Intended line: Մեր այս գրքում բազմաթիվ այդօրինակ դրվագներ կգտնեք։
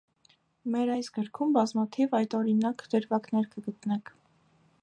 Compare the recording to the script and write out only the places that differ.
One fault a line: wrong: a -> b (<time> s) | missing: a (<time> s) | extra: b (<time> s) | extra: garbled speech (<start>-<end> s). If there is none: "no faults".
no faults